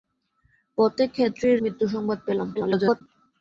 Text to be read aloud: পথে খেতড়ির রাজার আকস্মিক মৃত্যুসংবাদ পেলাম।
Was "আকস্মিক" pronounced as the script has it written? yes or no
no